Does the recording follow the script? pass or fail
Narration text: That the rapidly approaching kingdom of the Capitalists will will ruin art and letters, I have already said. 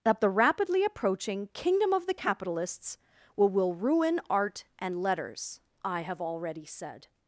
pass